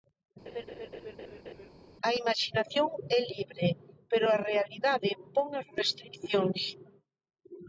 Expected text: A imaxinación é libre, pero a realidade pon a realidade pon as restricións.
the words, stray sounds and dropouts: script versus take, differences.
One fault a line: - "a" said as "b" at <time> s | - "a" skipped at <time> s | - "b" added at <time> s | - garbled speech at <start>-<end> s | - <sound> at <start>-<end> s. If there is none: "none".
- laugh at 0.5-1.7 s
- "a realidade pon" skipped at 5.5 s